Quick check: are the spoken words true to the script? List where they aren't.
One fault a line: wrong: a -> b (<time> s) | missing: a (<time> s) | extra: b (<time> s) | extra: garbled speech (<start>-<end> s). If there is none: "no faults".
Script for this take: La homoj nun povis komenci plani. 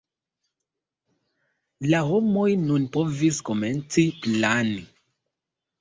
no faults